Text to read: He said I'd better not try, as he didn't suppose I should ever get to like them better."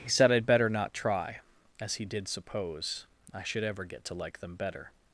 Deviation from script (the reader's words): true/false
true